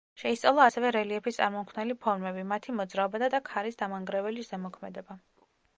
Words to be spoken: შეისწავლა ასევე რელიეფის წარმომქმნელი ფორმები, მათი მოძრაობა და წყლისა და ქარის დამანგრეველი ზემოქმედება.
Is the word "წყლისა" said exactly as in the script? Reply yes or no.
no